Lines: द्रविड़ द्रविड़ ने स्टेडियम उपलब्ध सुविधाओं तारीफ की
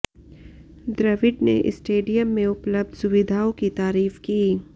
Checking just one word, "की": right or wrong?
right